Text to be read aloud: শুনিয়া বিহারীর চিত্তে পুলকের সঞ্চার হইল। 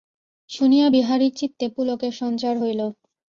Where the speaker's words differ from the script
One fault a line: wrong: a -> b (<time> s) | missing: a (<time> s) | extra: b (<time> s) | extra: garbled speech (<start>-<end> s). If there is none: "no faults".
no faults